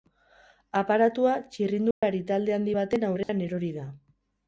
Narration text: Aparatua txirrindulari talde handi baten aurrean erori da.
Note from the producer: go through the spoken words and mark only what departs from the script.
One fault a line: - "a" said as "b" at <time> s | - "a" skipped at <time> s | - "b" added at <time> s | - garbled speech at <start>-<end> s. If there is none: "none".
none